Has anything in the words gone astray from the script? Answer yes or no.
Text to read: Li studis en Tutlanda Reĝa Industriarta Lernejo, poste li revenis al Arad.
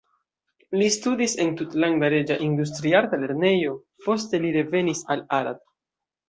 no